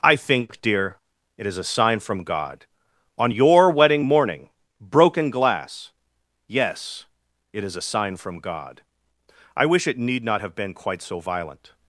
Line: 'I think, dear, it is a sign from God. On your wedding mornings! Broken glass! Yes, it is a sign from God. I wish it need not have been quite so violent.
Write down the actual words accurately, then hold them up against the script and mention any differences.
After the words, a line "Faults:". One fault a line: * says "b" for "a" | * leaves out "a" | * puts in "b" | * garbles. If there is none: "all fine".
'I think, dear, it is a sign from God. On your wedding morning! Broken glass! Yes, it is a sign from God. I wish it need not have been quite so violent.
Faults:
* says "morning" for "mornings"